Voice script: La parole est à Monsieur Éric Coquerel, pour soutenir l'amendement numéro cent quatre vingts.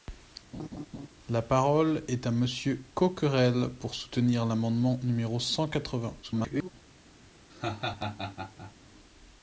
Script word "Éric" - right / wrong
wrong